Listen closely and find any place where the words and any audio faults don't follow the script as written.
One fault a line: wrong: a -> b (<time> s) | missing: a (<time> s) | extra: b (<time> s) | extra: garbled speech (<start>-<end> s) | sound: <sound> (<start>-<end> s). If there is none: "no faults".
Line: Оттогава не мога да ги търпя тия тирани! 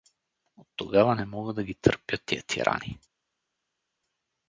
no faults